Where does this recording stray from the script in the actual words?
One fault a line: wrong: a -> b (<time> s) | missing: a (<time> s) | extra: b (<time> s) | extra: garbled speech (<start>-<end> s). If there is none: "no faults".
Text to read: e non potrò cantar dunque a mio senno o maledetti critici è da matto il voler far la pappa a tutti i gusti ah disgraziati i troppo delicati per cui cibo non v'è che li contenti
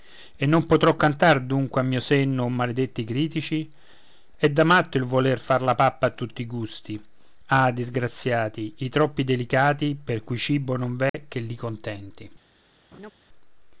no faults